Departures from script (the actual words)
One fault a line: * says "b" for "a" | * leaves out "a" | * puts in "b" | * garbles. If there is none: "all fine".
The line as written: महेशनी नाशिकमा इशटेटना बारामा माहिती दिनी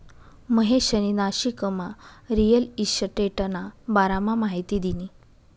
* puts in "रिअल"